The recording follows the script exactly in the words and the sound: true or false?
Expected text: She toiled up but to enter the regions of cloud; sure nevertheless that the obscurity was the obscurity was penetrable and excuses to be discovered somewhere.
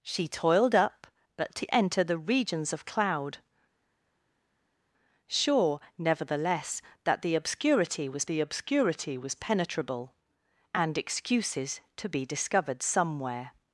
true